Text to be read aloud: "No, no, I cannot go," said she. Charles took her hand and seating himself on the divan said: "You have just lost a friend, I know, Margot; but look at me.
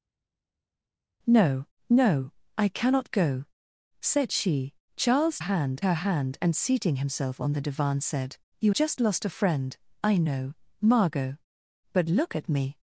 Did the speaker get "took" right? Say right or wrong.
wrong